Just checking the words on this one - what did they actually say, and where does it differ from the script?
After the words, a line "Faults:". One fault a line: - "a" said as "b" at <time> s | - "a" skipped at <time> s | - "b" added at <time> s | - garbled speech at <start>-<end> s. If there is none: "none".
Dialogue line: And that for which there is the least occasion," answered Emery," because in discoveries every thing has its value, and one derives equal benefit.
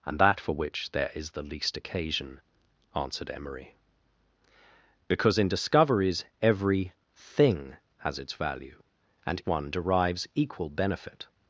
And that for which there is the least occasion," answered Emery," because in discoveries every thing has its value, and one derives equal benefit.
Faults:
none